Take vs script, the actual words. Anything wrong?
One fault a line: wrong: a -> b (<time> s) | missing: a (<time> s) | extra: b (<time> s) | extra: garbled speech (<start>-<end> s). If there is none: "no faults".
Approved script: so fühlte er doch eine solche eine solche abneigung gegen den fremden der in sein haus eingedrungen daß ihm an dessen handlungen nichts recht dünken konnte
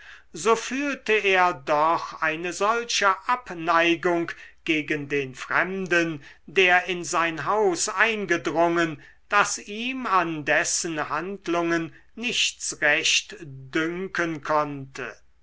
missing: eine solche (3.1 s)